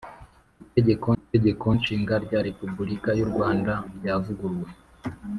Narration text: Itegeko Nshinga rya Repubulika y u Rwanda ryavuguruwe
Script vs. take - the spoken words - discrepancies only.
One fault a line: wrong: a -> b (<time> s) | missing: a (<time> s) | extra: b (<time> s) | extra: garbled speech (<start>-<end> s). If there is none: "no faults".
extra: itegeko (1.2 s)